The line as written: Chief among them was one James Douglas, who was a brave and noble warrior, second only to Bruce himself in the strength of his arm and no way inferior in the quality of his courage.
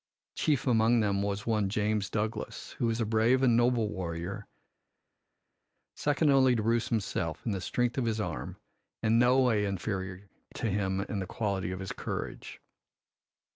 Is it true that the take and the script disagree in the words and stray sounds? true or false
true